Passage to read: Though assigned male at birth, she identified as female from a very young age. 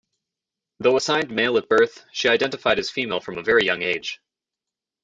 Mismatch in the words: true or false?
false